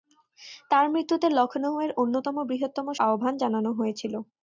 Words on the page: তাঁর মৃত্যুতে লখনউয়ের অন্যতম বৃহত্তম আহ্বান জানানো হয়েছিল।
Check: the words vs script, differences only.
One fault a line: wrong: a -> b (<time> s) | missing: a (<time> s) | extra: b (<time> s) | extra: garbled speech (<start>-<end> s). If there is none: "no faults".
no faults